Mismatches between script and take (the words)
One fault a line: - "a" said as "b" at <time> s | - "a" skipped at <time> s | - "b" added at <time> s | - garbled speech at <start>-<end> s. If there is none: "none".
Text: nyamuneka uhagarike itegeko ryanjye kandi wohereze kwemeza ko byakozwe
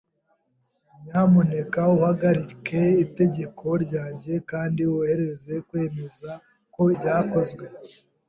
none